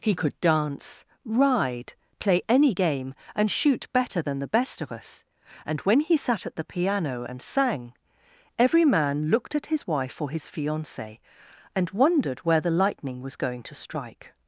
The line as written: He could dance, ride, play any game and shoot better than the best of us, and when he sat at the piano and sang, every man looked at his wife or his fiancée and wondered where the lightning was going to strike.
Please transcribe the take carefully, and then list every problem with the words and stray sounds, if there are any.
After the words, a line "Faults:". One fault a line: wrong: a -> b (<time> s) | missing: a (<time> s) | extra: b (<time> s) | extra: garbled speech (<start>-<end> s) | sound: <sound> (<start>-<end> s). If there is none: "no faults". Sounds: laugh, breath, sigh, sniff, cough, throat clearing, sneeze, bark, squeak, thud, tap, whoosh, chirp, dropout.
He could dance, ride, play any game and shoot better than the best of us, and when he sat at the piano and sang, every man looked at his wife or his fiancée and wondered where the lightning was going to strike.
Faults:
no faults